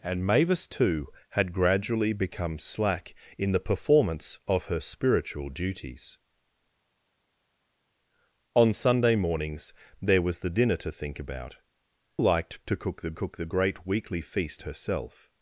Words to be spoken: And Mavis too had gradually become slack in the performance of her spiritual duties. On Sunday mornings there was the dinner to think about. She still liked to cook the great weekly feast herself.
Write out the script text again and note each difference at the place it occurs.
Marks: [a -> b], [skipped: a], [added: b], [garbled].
And Mavis too had gradually become slack in the performance of her spiritual duties. On Sunday mornings there was the dinner to think about. [She still liked to -> Liked to cook the] cook the great weekly feast herself.